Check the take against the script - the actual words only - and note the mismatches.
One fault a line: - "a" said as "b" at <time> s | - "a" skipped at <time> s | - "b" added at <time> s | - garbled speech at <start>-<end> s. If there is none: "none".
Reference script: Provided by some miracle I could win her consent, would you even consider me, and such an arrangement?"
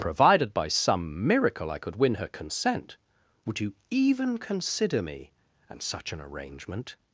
none